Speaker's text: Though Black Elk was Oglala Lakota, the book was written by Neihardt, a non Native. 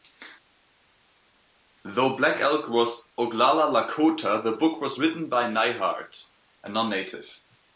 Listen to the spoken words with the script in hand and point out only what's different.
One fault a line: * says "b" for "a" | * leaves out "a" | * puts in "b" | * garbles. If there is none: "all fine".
all fine